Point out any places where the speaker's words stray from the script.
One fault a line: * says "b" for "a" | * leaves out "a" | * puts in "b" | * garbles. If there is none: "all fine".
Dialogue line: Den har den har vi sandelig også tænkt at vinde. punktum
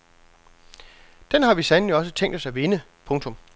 * leaves out "den har"
* puts in "os"